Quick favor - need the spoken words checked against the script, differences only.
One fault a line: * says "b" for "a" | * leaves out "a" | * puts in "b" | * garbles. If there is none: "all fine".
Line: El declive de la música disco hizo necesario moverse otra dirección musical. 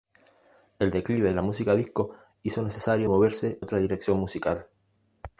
all fine